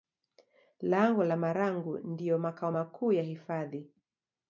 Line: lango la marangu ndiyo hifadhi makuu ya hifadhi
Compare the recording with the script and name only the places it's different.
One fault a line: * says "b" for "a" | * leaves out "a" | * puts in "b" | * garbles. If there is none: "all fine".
* says "makao" for "hifadhi"